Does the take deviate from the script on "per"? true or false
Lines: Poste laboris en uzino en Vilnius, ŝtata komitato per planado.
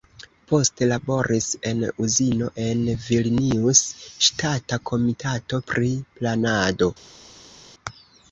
true